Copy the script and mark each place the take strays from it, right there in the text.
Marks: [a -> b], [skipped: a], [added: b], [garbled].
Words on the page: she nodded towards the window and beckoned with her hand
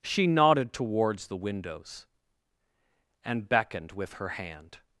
she nodded towards the [window -> windows] and beckoned with her hand